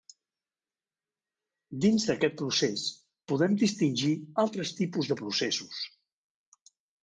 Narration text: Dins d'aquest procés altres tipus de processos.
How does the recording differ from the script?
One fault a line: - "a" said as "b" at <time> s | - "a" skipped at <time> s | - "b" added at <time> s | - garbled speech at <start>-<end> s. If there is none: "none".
- "podem distingir" added at 3.3 s